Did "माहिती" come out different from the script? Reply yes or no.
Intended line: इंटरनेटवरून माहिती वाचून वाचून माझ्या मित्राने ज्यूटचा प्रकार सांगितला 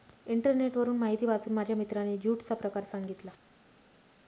no